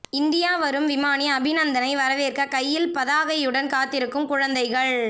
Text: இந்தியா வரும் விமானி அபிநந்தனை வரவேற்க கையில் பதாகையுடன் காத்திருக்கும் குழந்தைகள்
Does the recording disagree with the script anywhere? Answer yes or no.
no